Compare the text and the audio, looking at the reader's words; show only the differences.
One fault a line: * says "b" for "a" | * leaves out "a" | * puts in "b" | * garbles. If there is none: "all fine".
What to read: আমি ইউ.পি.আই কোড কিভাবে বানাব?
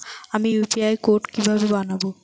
all fine